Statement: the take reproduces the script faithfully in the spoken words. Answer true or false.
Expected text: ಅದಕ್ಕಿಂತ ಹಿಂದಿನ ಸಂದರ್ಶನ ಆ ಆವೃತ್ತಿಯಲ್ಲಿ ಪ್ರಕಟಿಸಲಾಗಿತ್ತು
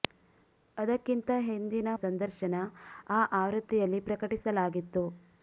true